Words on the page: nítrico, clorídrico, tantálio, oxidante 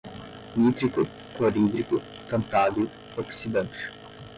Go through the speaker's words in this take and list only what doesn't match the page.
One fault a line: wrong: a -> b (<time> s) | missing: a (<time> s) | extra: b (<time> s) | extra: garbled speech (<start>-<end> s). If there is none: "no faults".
no faults